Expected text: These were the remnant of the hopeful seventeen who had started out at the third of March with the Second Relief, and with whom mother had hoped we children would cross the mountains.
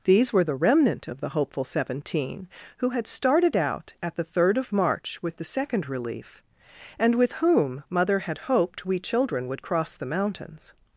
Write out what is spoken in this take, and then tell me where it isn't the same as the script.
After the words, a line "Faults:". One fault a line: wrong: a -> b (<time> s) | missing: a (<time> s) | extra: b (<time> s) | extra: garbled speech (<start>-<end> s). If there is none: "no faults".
These were the remnant of the hopeful seventeen who had started out at the third of March with the Second Relief, and with whom mother had hoped we children would cross the mountains.
Faults:
no faults